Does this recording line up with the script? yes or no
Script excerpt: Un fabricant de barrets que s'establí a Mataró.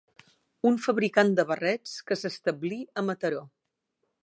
yes